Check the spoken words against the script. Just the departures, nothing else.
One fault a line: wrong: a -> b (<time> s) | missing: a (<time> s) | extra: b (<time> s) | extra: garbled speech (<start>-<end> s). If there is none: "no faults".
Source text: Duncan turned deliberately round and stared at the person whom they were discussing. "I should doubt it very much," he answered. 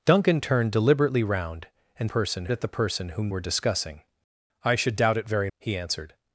wrong: stared -> person (2.0 s)
missing: they (3.3 s)
missing: much (5.5 s)